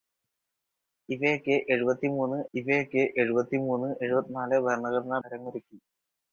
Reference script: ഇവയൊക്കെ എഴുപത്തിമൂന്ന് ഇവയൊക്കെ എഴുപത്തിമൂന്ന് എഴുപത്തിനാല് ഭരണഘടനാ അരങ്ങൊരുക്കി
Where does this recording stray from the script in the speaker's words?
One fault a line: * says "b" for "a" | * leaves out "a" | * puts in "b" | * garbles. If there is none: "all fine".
all fine